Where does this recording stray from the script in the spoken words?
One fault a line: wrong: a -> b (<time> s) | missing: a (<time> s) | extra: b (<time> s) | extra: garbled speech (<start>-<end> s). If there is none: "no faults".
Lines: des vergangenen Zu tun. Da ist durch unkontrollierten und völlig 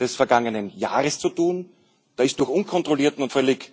extra: Jahres (0.8 s)